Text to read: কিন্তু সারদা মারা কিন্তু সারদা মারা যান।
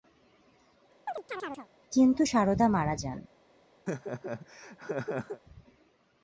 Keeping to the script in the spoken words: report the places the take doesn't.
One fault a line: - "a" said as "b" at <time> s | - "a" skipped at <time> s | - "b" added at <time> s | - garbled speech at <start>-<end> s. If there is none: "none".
- "কিন্তু সারদা মারা" skipped at 3.0 s